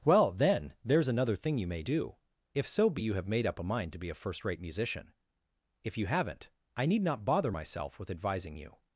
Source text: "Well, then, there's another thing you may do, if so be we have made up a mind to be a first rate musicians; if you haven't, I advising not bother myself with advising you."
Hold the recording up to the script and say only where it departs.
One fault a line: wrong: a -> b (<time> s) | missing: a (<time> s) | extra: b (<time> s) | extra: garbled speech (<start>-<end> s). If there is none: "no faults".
wrong: we -> you (3.0 s)
wrong: musicians -> musician (4.6 s)
wrong: advising -> need (6.8 s)